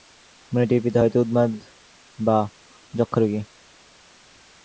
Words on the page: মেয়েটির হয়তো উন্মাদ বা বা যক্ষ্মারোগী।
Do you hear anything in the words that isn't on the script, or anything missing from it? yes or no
yes